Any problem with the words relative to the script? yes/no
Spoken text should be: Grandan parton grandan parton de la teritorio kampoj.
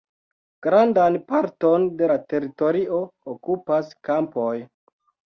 yes